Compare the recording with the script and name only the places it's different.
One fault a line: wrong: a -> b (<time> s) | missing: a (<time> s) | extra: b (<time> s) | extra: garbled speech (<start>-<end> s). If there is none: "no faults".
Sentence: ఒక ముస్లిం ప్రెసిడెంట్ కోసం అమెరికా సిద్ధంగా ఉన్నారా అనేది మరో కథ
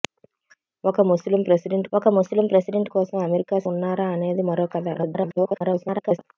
extra: ఒక ముస్లిం ప్రెసిడెంట్ (1.9 s)
missing: సిద్ధంగా (3.6 s)
extra: garbled speech (4.9-6.2 s)